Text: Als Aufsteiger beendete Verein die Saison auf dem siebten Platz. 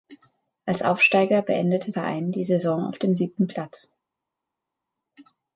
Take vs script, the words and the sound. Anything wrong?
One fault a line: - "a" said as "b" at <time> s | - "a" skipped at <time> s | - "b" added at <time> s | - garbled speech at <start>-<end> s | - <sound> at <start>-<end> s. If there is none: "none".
none